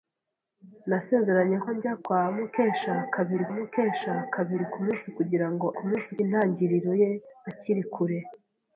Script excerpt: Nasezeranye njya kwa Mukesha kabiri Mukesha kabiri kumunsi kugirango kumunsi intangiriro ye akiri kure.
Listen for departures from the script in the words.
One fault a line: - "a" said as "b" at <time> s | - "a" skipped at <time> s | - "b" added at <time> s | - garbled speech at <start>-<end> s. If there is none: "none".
none